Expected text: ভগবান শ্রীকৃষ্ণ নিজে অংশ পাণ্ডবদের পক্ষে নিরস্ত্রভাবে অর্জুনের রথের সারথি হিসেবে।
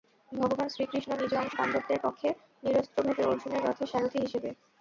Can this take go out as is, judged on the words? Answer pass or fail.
pass